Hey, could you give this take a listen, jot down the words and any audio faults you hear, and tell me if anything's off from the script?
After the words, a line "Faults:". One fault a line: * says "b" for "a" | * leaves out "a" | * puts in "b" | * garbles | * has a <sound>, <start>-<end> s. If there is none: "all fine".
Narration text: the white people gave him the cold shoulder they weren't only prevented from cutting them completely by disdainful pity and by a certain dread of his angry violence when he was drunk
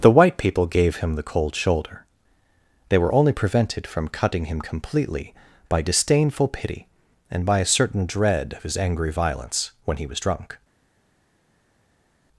the white people gave him the cold shoulder they were only prevented from cutting him completely by disdainful pity and by a certain dread of his angry violence when he was drunk
Faults:
* says "were" for "weren't"
* says "him" for "them"